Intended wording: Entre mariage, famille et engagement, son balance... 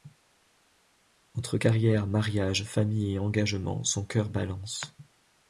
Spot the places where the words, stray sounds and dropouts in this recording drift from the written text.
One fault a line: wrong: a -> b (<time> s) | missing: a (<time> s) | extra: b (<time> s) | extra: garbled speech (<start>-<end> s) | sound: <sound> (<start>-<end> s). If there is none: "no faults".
extra: carrière (1.5 s)
extra: cœur (4.1 s)